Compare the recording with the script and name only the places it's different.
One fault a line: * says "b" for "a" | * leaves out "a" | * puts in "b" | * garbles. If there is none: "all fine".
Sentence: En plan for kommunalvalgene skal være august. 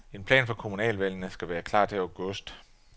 * puts in "klar til"